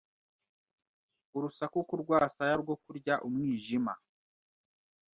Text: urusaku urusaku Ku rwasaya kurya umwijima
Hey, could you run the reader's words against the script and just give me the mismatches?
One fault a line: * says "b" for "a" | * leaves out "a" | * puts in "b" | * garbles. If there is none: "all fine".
* leaves out "urusaku"
* puts in "rwo"